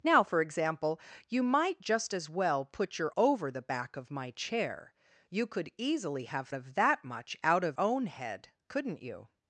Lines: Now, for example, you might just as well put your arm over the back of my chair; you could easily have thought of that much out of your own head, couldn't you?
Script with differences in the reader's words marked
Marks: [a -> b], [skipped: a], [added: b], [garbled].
Now, for example, you might just as well put your [skipped: arm] over the back of my chair; you could easily have [skipped: thought] of that much out of [skipped: your] own head, couldn't you?